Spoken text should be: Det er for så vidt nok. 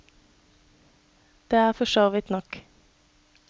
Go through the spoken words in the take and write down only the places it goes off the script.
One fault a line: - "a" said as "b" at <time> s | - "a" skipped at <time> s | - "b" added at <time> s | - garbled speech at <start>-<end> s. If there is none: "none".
none